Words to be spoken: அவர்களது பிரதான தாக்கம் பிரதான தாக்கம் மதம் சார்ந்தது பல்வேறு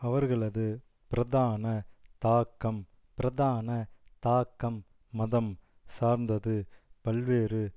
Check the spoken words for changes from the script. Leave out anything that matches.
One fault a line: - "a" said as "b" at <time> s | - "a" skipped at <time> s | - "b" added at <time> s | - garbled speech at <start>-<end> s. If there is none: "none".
none